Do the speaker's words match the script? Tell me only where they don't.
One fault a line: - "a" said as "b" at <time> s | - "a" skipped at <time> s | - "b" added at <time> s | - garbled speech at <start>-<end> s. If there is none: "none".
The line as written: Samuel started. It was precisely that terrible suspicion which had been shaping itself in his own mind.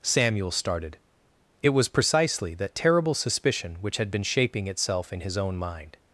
none